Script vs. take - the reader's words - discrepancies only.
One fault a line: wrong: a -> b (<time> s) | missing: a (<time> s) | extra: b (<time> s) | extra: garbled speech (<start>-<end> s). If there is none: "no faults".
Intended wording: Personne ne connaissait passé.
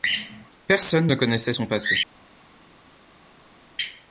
extra: son (1.5 s)